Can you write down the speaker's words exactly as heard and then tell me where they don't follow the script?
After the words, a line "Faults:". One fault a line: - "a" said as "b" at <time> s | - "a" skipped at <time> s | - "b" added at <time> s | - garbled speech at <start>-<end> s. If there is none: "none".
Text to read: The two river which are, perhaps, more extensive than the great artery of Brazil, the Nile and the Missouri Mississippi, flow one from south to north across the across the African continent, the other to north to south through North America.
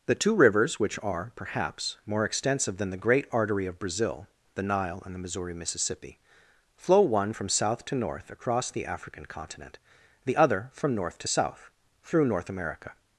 The two rivers which are, perhaps, more extensive than the great artery of Brazil, the Nile and the Missouri Mississippi, flow one from south to north across the African continent, the other from north to south through North America.
Faults:
- "river" said as "rivers" at 0.3 s
- "across the" skipped at 8.9 s
- "to" said as "from" at 10.7 s